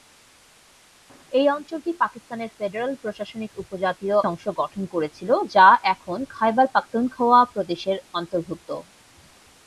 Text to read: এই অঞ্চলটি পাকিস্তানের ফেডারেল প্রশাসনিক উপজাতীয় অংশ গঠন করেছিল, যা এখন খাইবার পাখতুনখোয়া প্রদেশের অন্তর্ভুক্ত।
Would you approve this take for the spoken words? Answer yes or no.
yes